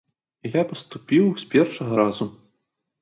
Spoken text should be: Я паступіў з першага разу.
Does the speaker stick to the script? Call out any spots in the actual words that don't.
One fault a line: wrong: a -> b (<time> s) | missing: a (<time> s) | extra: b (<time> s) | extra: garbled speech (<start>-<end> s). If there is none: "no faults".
no faults